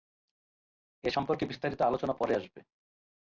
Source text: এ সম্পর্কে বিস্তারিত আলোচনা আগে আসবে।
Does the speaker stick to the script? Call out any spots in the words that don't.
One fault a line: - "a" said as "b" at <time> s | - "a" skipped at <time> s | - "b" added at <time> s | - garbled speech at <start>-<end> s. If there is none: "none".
- "আগে" said as "পরে" at 2.1 s